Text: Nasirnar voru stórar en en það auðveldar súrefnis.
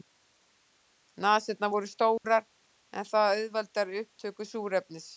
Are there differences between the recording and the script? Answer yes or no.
yes